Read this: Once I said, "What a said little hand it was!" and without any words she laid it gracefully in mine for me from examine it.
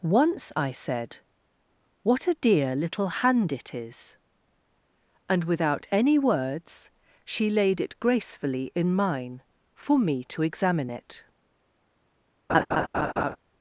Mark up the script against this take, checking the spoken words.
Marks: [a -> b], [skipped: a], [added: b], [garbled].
Once I said, "What a [said -> dear] little hand it [was!" -> is] and without any words she laid it gracefully in mine for me [from -> to] examine it.